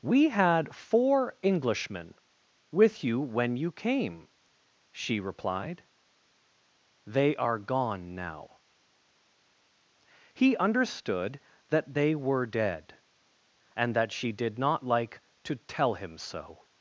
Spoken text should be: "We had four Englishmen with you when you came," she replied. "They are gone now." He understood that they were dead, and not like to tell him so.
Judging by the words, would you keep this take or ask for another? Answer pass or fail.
fail